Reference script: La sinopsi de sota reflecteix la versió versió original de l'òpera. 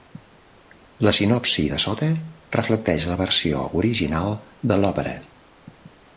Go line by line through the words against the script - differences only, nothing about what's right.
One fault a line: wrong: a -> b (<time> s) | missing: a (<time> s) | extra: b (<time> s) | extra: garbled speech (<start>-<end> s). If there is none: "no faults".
missing: versió (3.6 s)